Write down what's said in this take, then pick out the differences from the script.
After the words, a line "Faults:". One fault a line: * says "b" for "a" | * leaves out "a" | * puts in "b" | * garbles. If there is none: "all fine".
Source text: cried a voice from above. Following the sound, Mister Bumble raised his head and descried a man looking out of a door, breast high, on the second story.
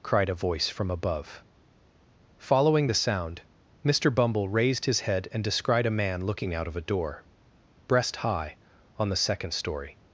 cried a voice from above. Following the sound, Mister Bumble raised his head and descried a man looking out of a door, breast high, on the second story.
Faults:
all fine